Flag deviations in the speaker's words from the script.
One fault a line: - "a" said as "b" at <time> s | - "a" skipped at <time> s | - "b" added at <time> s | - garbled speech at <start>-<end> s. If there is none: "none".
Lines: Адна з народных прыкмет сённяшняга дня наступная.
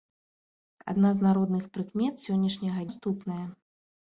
- "дня" skipped at 2.9 s